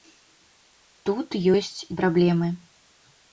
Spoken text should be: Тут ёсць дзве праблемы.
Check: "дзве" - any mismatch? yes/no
yes